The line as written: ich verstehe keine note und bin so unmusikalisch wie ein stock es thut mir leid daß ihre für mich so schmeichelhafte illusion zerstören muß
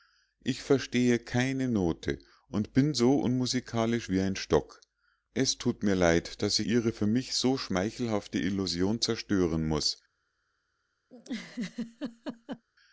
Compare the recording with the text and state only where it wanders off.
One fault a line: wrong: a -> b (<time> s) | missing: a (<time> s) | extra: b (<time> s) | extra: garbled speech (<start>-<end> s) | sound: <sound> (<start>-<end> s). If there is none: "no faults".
sound: laugh (11.1-12.6 s)